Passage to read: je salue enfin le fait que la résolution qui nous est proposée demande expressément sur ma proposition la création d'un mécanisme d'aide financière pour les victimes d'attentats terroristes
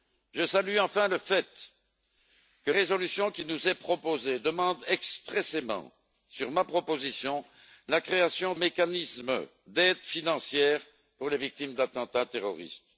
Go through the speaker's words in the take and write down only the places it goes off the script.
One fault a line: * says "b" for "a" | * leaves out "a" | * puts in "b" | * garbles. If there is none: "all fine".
* leaves out "la"
* leaves out "d'un"